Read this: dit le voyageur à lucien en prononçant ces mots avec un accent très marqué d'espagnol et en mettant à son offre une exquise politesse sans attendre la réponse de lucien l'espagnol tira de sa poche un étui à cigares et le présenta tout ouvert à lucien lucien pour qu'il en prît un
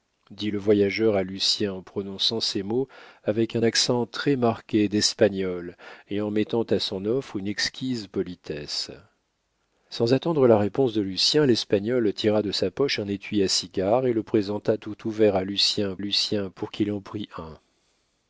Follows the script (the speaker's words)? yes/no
yes